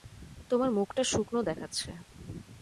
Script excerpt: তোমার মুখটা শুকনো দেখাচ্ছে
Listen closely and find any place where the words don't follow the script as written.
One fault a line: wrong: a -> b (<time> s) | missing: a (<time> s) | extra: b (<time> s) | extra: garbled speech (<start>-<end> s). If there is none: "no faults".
no faults